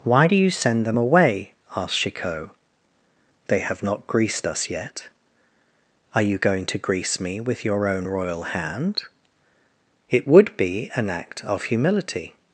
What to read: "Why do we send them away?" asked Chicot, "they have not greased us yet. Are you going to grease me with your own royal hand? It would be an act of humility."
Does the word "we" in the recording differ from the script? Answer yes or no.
yes